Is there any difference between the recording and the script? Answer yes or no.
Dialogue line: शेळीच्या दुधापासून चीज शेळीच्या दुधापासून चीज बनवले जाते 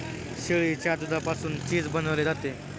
yes